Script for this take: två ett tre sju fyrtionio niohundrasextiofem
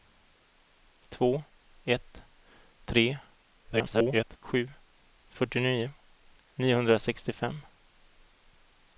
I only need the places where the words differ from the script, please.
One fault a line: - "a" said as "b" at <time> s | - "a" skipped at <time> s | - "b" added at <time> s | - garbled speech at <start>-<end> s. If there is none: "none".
- garbled speech at 3.6-4.4 s